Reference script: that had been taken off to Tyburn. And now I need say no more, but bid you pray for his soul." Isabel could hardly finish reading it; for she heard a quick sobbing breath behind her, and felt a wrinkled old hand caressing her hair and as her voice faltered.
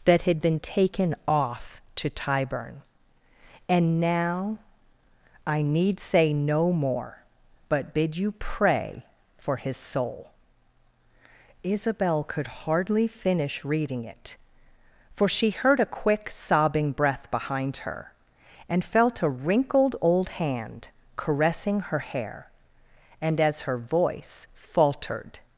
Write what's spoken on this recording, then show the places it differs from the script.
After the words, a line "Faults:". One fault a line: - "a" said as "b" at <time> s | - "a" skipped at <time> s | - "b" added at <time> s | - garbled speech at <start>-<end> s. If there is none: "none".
that had been taken off to Tyburn. And now I need say no more, but bid you pray for his soul." Isabel could hardly finish reading it; for she heard a quick sobbing breath behind her, and felt a wrinkled old hand caressing her hair and as her voice faltered.
Faults:
none